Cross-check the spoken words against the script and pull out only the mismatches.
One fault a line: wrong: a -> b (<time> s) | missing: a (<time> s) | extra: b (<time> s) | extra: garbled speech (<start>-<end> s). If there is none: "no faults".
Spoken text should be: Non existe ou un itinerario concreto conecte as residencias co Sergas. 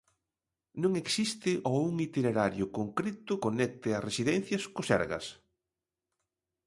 no faults